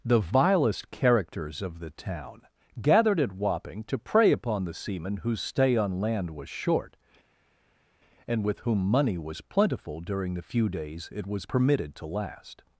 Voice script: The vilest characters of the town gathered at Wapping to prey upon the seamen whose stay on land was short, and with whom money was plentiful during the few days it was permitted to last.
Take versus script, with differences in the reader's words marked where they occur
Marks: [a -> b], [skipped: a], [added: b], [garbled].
The vilest characters of the town gathered at Wapping to prey upon the seamen whose stay on land was short, and with whom money was plentiful during the few days it was permitted to last.